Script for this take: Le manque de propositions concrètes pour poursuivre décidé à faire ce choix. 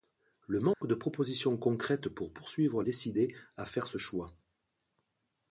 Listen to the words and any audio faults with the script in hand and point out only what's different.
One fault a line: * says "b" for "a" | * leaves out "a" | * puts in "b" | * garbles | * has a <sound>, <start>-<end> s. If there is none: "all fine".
* has a dropout, 0.7-0.8 s